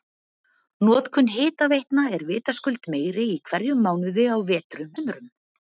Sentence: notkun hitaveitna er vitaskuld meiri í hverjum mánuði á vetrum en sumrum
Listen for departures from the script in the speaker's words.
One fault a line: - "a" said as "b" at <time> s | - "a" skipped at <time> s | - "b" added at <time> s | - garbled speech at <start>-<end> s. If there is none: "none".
- "en" skipped at 4.9 s